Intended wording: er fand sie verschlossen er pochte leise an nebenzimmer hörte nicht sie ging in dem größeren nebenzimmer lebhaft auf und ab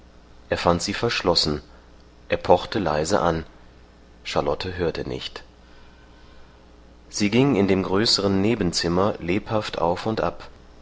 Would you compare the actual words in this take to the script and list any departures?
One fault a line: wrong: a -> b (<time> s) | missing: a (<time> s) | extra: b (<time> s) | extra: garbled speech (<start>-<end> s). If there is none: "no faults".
wrong: nebenzimmer -> charlotte (4.2 s)